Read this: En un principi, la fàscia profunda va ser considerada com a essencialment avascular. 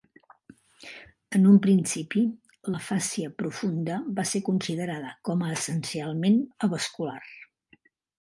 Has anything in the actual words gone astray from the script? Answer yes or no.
no